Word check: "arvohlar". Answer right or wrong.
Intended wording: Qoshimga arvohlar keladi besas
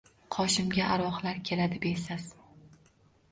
right